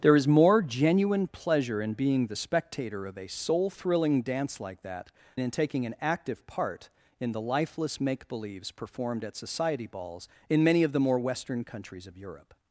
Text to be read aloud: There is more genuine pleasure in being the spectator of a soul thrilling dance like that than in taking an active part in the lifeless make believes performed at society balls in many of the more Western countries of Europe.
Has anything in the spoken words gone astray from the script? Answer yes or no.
yes